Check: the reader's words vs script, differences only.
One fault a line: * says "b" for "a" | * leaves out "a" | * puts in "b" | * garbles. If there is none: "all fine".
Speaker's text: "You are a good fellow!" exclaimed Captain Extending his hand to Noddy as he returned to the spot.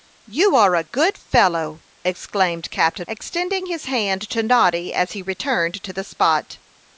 all fine